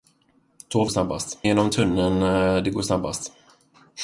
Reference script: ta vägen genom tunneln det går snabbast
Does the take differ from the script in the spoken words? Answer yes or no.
yes